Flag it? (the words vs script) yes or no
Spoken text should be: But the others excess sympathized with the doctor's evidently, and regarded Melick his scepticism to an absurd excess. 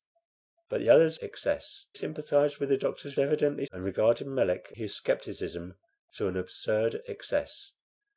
no